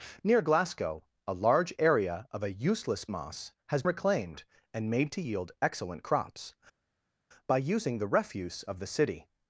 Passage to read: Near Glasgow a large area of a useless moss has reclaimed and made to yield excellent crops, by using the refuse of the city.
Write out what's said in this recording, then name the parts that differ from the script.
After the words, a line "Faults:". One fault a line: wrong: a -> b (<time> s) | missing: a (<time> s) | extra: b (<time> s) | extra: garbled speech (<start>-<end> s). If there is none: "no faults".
Near Glasgow a large area of a useless moss has reclaimed and made to yield excellent crops, by using the refuse of the city.
Faults:
no faults